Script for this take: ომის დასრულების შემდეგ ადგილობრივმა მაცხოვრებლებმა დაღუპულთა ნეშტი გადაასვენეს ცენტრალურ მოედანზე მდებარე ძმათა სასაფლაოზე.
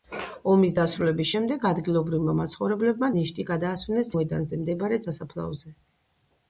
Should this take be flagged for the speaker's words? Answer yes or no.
yes